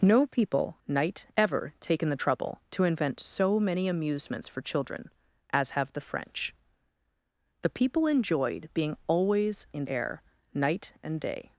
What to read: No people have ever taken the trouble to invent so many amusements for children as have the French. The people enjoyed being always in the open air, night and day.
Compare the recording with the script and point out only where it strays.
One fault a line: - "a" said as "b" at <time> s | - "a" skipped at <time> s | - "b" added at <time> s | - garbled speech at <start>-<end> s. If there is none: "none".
- "have" said as "night" at 0.9 s
- "the open" skipped at 9.9 s